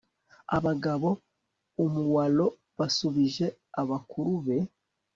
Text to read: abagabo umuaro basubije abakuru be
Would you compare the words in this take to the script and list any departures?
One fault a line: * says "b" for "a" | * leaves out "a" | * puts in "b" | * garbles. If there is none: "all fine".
all fine